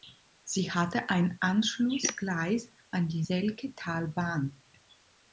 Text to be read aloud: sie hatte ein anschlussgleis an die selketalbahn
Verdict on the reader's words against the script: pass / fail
pass